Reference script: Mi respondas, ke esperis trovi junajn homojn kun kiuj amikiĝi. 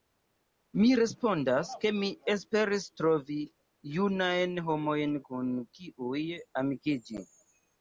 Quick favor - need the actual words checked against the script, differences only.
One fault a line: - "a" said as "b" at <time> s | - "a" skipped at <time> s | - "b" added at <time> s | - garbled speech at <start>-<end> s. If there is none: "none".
- "mi" added at 2.0 s